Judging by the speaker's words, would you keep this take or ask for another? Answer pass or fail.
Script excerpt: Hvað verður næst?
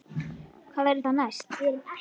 fail